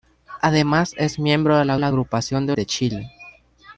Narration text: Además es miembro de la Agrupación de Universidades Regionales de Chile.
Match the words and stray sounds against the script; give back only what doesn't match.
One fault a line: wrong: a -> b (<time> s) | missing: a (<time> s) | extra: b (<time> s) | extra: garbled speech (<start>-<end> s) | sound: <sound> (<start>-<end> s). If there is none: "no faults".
extra: la (1.8 s)
missing: Universidades Regionales (2.5 s)